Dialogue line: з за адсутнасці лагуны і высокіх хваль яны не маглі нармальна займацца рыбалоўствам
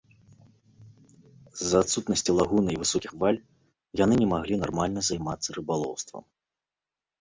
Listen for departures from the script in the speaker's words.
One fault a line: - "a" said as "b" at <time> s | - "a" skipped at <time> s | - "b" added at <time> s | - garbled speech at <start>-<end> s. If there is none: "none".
none